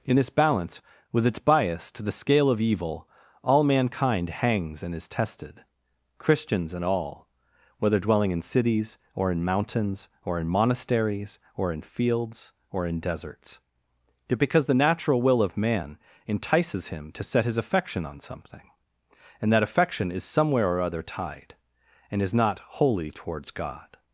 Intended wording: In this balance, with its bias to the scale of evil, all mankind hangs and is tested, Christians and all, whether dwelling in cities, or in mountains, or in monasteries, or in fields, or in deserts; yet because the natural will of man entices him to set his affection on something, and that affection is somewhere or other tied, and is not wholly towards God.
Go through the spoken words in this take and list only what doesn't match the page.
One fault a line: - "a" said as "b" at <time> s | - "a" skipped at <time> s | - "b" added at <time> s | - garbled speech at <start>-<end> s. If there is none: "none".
none